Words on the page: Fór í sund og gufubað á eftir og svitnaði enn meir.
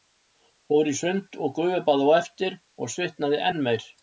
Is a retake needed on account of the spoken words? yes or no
no